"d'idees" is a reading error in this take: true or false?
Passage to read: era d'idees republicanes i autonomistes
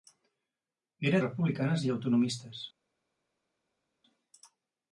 true